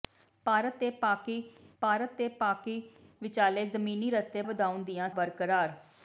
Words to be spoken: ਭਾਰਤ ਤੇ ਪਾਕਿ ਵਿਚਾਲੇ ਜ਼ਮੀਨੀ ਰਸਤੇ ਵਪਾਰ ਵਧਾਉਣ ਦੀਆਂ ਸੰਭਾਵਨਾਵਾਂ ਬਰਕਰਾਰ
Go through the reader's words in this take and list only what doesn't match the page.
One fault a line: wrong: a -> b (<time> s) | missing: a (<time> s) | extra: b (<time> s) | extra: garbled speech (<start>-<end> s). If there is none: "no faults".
extra: ਭਾਰਤ ਤੇ ਪਾਕਿ (1.8 s)
missing: ਵਪਾਰ (4.4 s)
missing: ਸੰਭਾਵਨਾਵਾਂ (5.1 s)